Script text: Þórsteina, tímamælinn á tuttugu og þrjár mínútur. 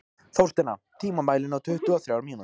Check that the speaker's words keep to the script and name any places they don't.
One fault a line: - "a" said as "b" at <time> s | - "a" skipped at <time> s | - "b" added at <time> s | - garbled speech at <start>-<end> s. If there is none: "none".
none